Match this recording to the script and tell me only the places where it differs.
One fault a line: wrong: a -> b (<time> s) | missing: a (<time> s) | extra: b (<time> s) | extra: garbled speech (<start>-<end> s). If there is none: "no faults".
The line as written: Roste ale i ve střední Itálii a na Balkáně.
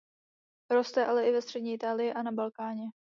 no faults